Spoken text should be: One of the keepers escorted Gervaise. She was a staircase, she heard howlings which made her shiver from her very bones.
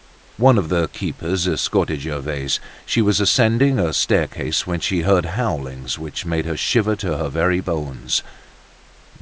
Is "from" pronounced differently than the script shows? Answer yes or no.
yes